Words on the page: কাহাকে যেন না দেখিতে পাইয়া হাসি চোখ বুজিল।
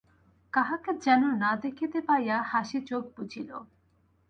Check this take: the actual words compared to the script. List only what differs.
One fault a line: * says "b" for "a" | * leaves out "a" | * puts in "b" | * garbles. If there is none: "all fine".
all fine